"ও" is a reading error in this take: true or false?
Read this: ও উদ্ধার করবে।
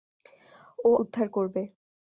false